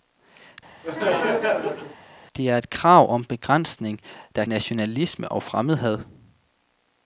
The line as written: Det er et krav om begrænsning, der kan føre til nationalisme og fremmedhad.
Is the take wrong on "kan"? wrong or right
wrong